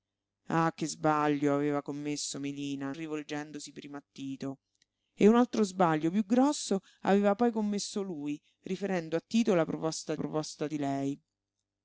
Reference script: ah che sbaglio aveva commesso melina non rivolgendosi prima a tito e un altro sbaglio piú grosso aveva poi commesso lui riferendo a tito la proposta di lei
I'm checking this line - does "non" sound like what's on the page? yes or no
no